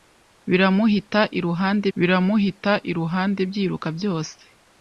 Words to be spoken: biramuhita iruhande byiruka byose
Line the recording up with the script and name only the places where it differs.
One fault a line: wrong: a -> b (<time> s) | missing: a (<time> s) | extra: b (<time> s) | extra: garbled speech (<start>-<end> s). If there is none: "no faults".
extra: biramuhita iruhande (2.0 s)